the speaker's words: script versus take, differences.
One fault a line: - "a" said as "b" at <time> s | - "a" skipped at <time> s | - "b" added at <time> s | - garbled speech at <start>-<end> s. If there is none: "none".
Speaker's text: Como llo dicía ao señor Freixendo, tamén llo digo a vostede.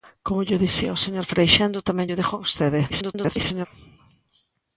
- garbled speech at 2.9-3.7 s